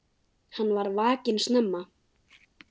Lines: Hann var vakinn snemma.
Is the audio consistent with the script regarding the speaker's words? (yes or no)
yes